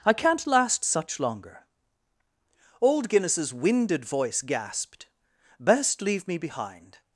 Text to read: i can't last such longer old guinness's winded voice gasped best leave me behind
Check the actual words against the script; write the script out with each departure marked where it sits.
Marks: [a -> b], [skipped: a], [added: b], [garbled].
i can't last such longer old guinness's winded voice gasped best leave me behind